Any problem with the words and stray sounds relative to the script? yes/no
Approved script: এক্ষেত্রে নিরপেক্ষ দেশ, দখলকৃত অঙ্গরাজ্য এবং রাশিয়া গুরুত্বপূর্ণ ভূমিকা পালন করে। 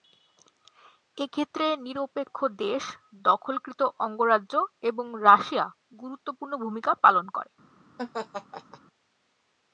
yes